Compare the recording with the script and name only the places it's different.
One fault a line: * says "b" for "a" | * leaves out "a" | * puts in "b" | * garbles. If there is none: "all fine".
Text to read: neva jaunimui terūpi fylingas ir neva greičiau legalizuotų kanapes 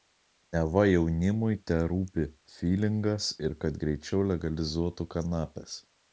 * says "kad" for "neva"